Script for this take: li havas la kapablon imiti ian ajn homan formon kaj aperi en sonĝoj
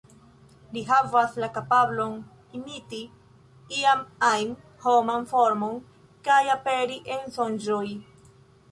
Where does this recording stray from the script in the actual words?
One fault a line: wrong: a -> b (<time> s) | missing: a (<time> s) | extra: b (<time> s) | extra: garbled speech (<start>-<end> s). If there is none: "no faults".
no faults